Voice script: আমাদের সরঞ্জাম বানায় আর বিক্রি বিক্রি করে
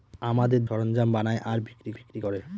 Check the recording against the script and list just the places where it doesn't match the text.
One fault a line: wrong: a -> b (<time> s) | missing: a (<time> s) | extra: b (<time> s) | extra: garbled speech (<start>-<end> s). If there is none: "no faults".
no faults